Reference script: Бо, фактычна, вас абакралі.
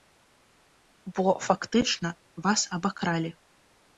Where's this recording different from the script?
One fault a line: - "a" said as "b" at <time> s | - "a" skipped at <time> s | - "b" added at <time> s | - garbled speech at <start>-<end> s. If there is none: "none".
none